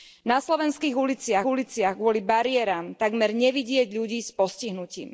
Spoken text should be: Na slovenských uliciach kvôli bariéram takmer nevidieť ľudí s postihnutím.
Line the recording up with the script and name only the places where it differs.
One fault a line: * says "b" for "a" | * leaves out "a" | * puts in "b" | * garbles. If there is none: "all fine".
* puts in "uliciach"